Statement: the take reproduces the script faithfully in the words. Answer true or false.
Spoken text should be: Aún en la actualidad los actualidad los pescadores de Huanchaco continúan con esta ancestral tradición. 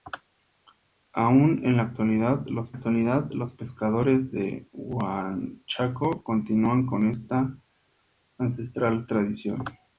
true